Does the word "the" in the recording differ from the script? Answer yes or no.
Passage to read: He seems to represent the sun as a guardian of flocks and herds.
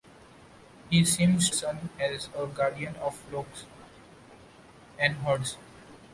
yes